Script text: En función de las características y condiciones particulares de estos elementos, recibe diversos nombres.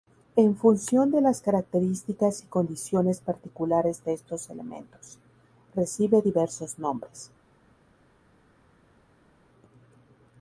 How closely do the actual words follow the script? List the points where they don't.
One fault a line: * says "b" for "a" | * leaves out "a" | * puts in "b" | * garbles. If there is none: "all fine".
all fine